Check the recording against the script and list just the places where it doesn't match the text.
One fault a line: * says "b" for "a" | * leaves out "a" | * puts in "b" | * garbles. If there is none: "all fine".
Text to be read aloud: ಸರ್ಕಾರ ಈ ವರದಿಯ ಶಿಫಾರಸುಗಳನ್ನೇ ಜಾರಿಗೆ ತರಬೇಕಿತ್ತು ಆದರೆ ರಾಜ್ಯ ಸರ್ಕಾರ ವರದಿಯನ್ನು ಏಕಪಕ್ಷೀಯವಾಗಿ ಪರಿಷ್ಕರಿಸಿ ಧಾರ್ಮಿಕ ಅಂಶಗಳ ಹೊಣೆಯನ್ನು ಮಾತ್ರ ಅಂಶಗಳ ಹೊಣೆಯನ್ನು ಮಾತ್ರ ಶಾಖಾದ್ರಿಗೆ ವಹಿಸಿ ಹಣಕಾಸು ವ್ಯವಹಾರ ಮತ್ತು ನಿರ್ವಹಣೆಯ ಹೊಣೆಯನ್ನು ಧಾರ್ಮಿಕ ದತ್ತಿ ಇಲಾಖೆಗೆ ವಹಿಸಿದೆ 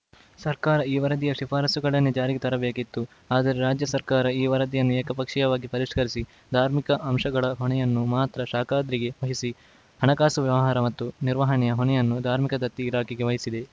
* puts in "ಈ"
* leaves out "ಅಂಶಗಳ ಹೊಣೆಯನ್ನು ಮಾತ್ರ"